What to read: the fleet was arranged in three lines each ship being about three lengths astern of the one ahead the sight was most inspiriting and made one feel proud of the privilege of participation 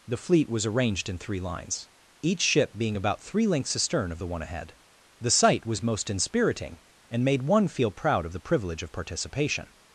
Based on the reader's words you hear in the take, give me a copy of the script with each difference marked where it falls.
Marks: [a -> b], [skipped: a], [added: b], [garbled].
the fleet was arranged in three lines each ship being about three lengths astern of the one ahead the sight was most inspiriting and made one feel proud of the privilege of participation